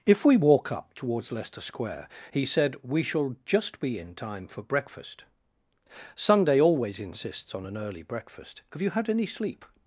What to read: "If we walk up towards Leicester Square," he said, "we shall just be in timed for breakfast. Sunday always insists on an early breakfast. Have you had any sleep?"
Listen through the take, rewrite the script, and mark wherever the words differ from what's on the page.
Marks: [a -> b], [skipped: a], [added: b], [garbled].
"If we walk up towards Leicester Square," he said, "we shall just be in [timed -> time] for breakfast. Sunday always insists on an early breakfast. Have you had any sleep?"